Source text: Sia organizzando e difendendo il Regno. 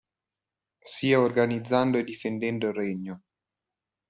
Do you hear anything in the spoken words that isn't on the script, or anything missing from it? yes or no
no